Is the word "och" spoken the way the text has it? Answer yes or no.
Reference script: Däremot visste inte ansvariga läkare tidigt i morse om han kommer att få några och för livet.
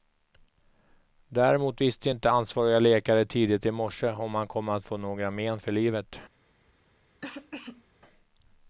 no